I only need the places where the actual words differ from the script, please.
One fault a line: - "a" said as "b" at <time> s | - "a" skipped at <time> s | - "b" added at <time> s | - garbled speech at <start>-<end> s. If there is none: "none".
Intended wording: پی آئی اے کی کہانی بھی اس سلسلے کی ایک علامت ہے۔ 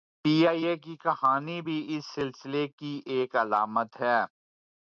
none